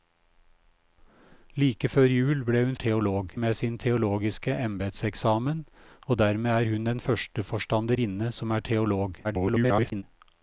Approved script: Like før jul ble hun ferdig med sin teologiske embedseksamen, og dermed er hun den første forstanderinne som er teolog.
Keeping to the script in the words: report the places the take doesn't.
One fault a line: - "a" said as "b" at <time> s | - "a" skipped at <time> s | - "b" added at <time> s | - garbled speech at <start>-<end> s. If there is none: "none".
- "ferdig" said as "teolog" at 2.7 s
- garbled speech at 9.2-10.0 s